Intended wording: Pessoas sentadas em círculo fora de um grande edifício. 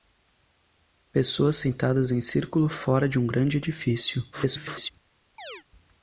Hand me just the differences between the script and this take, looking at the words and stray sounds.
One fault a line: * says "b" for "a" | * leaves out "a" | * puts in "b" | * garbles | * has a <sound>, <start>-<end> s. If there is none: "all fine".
* garbles
* has a chirp, 5.4-5.6 s